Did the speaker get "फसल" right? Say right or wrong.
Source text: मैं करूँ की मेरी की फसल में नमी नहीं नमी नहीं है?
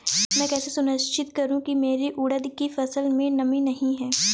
right